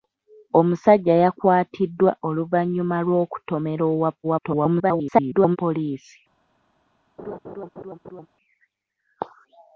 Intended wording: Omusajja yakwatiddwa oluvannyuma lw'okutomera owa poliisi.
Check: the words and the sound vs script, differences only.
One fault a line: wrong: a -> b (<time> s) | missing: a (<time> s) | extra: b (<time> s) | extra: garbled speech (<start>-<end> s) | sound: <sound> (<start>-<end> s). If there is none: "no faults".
extra: garbled speech (4.2-5.6 s)
sound: laugh (7.2-8.3 s)